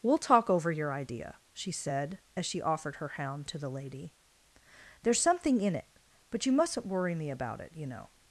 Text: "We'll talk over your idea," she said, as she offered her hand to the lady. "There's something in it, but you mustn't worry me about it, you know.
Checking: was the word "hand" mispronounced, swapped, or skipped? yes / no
yes